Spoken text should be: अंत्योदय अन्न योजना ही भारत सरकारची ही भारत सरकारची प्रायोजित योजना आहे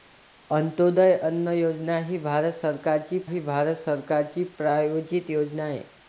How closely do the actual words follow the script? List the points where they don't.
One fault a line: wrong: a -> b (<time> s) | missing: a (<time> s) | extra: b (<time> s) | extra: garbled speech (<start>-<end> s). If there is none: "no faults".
no faults